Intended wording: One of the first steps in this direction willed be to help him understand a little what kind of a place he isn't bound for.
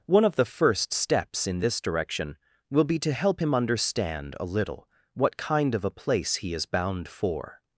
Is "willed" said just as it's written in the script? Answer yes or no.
no